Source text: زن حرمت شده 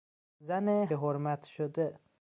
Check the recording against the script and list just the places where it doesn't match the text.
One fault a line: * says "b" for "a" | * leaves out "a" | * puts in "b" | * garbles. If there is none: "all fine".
all fine